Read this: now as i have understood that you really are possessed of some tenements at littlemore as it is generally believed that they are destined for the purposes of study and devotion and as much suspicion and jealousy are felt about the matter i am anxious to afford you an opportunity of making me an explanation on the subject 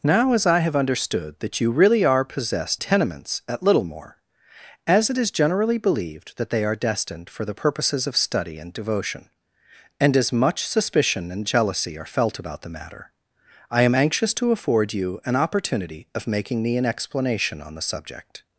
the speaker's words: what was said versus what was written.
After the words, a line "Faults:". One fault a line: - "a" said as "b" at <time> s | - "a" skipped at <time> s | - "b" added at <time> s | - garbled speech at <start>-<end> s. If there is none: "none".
now as i have understood that you really are possessed tenements at littlemore as it is generally believed that they are destined for the purposes of study and devotion and as much suspicion and jealousy are felt about the matter i am anxious to afford you an opportunity of making me an explanation on the subject
Faults:
- "of some" skipped at 2.8 s